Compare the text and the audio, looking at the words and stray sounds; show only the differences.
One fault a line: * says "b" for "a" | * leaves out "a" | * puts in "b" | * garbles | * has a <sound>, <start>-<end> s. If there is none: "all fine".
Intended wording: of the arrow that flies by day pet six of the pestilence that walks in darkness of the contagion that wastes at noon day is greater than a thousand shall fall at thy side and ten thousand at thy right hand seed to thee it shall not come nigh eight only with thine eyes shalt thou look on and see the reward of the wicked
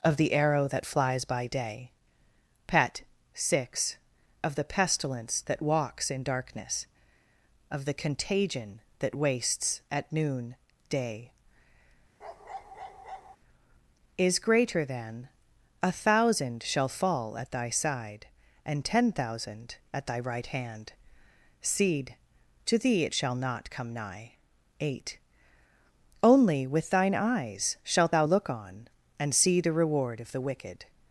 * has a bark, 12.2-13.4 s